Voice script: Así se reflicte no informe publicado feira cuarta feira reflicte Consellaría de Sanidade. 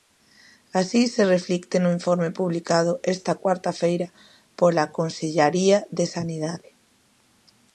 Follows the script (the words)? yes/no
no